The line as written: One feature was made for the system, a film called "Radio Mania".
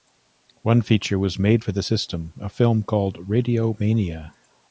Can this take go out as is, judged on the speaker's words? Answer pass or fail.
pass